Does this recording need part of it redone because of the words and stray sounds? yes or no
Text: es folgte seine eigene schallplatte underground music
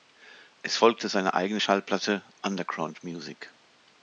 no